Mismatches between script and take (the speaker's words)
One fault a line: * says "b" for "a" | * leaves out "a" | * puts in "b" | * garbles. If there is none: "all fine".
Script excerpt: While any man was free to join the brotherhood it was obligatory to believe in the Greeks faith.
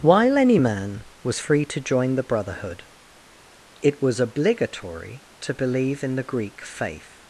* says "Greek" for "Greeks"